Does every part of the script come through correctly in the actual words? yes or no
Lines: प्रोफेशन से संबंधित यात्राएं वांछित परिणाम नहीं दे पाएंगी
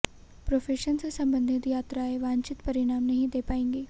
yes